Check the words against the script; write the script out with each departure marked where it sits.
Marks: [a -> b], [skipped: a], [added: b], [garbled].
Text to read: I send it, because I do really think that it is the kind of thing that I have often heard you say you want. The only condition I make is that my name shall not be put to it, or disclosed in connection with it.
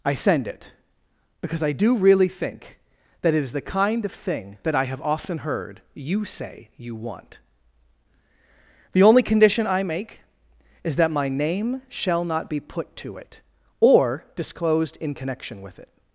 I send it, because I do really think that it is the kind of thing that I have often heard you say you want. The only condition I make is that my name shall not be put to it, or disclosed in connection with it.